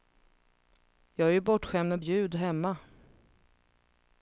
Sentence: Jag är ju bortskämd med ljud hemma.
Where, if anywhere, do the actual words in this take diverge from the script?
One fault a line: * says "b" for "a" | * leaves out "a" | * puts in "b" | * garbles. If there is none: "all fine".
all fine